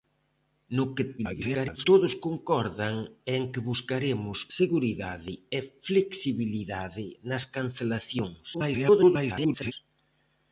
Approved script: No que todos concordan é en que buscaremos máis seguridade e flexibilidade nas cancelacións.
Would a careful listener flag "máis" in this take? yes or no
yes